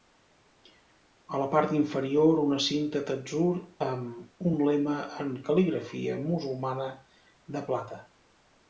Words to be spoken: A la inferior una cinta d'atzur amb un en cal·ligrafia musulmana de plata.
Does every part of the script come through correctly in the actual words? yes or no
no